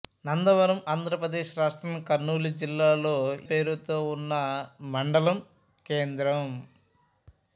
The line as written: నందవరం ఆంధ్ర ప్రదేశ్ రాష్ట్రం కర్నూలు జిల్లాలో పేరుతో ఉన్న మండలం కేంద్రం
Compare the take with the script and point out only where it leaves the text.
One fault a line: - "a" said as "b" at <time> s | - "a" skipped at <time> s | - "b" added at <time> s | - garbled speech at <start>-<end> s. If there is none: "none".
none